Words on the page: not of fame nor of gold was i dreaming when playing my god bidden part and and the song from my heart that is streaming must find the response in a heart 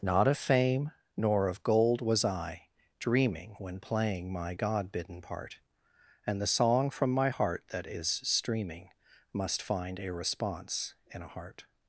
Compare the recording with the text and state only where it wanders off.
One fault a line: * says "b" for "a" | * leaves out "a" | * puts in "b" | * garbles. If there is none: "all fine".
* leaves out "and"
* says "a" for "the"